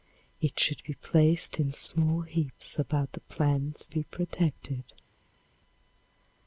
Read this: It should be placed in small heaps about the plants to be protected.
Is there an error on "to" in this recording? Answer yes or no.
yes